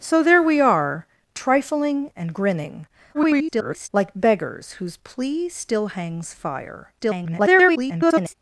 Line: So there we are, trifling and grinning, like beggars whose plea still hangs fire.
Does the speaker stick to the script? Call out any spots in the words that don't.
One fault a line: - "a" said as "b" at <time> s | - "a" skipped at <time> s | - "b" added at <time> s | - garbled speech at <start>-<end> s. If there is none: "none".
- garbled speech at 3.1-3.9 s
- garbled speech at 7.0-8.3 s